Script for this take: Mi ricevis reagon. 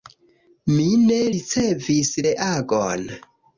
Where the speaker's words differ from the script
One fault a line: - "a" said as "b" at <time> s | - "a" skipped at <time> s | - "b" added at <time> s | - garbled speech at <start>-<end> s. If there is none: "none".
- "ne" added at 1.0 s